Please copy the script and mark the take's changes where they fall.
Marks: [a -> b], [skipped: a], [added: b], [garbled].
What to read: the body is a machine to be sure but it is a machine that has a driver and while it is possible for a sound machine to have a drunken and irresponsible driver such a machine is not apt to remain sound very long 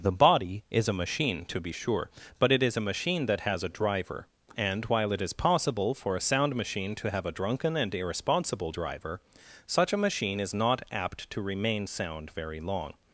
the body is a machine to be sure but it is a machine that has a driver and while it is possible for a sound machine to have a drunken and irresponsible driver such a machine is not apt to remain sound very long